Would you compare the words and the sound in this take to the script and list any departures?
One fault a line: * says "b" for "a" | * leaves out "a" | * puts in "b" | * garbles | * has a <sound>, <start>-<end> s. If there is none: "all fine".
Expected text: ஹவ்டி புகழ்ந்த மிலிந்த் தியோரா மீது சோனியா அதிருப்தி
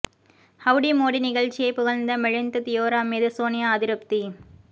* puts in "மோடி நிகழ்ச்சியை"